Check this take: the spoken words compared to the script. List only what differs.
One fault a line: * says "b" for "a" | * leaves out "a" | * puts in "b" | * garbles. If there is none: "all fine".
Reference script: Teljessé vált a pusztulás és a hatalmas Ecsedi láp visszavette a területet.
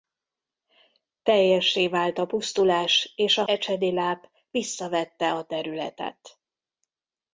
* leaves out "hatalmas"